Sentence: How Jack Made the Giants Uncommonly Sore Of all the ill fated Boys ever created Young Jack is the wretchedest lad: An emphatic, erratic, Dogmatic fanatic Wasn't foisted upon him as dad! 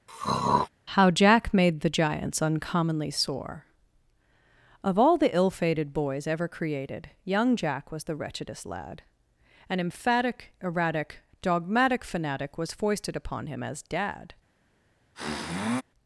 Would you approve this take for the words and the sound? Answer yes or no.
no